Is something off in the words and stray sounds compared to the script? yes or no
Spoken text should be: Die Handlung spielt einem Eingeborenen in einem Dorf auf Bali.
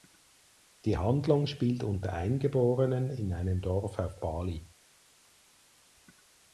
yes